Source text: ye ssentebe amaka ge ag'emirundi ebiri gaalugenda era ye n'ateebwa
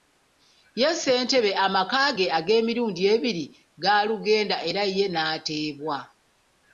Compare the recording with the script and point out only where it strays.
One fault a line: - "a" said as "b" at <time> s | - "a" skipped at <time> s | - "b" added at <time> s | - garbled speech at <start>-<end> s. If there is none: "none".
none